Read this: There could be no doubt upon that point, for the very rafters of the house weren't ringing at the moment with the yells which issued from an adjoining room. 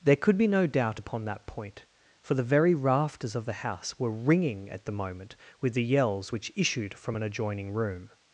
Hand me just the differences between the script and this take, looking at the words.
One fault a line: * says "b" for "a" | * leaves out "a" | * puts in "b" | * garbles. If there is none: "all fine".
* says "were" for "weren't"